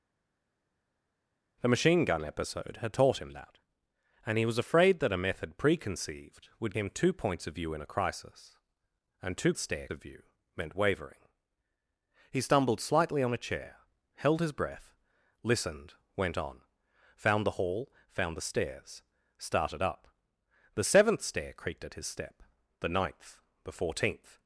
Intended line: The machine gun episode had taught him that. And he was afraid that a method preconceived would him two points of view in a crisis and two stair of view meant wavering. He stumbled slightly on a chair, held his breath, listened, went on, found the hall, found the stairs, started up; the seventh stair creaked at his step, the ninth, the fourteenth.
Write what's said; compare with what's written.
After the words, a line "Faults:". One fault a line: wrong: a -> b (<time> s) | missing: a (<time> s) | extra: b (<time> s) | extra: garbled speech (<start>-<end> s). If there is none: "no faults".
The machine gun episode had taught him that. And he was afraid that a method preconceived would him two points of view in a crisis and two stair of view meant wavering. He stumbled slightly on a chair, held his breath, listened, went on, found the hall, found the stairs, started up; the seventh stair creaked at his step, the ninth, the fourteenth.
Faults:
no faults